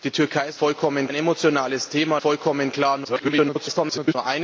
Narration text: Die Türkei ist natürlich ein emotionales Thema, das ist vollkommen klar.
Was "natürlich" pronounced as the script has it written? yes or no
no